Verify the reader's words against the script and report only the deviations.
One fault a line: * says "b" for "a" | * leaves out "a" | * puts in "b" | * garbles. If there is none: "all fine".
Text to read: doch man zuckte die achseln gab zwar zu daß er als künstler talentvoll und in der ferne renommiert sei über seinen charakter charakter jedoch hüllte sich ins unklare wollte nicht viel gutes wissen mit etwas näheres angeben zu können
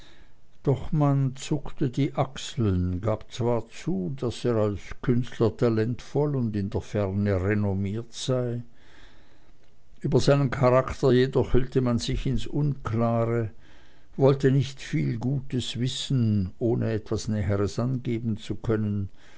* leaves out "charakter"
* puts in "man"
* says "ohne" for "mit"